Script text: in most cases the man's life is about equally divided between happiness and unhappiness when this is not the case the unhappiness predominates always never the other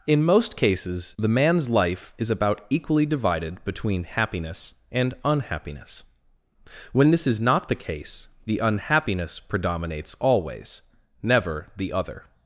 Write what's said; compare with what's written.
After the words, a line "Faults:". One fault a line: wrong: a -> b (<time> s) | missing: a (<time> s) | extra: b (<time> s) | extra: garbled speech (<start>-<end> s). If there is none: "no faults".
in most cases the man's life is about equally divided between happiness and unhappiness when this is not the case the unhappiness predominates always never the other
Faults:
no faults